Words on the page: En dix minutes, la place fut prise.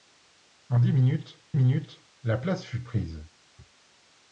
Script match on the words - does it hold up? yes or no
no